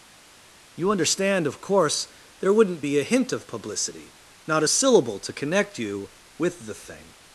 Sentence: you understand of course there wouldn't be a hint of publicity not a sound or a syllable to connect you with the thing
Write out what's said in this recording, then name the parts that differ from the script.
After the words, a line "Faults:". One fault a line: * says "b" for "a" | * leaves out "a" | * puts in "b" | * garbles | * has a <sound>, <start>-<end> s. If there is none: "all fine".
you understand of course there wouldn't be a hint of publicity not a a syllable to connect you with the thing
Faults:
* leaves out "sound or"